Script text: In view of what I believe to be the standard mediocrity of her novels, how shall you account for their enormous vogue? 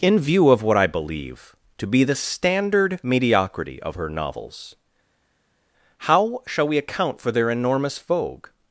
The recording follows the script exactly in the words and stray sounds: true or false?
false